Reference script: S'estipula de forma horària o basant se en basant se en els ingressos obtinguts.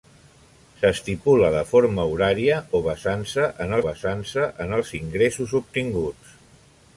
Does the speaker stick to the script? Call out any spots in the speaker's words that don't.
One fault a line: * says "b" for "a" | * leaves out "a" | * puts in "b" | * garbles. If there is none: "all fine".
all fine